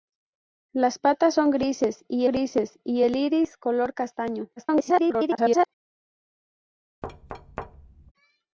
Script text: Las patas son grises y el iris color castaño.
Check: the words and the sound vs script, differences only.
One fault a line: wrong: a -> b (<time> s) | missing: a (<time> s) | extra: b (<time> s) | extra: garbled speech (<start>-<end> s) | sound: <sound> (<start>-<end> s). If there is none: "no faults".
extra: grises y (2.2 s)
extra: garbled speech (4.6-5.7 s)
sound: thud (7.0-8.1 s)